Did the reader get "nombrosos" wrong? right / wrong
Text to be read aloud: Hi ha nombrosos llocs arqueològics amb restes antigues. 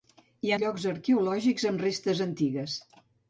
wrong